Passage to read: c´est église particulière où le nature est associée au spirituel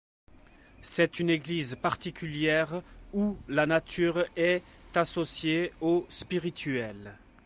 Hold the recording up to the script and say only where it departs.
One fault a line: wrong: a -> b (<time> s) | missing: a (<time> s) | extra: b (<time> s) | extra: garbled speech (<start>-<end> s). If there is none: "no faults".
extra: une (1.2 s)
wrong: le -> la (3.5 s)